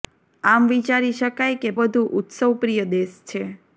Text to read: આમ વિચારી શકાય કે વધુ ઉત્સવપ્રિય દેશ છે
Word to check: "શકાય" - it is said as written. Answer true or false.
true